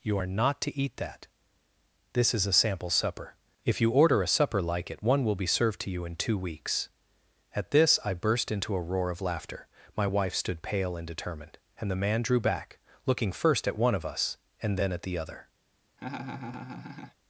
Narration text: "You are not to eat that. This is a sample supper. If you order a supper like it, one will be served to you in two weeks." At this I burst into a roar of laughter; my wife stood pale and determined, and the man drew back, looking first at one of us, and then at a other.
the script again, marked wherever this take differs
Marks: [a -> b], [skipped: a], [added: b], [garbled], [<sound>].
"You are not to eat that. This is a sample supper. If you order a supper like it, one will be served to you in two weeks." At this I burst into a roar of laughter; my wife stood pale and determined, and the man drew back, looking first at one of us, and then at [a -> the] other. [laugh]